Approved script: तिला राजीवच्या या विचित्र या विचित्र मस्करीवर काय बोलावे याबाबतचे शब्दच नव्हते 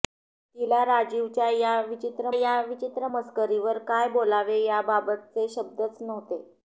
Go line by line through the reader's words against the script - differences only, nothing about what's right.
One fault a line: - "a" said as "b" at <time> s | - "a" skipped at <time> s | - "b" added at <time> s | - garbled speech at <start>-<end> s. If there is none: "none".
none